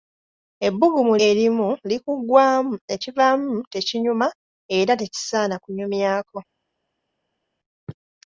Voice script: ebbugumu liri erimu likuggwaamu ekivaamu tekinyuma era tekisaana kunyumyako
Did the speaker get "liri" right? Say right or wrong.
wrong